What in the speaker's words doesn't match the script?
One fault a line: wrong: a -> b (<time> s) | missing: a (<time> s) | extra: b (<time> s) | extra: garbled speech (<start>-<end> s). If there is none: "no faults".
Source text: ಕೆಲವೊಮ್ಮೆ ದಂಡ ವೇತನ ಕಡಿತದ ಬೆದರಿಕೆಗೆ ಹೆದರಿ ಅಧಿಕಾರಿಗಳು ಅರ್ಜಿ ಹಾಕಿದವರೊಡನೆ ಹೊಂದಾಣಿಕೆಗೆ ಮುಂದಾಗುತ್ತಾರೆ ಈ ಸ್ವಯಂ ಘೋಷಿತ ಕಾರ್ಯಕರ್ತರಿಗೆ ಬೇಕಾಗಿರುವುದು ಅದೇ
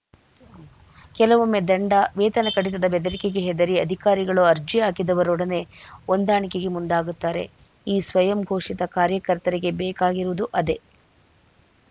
no faults